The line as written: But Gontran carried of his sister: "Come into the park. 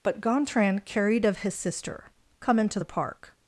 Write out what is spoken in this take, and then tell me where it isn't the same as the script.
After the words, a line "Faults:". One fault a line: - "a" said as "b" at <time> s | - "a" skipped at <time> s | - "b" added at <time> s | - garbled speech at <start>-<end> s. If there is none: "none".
But Gontran carried of his sister: "Come into the park.
Faults:
none